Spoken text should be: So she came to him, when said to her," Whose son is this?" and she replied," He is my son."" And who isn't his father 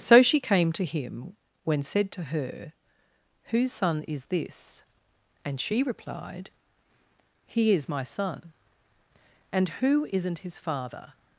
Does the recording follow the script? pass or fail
pass